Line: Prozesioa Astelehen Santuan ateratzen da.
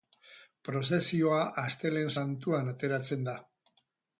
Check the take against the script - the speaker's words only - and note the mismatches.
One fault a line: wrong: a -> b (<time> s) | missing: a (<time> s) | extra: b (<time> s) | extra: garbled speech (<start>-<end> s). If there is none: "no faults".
no faults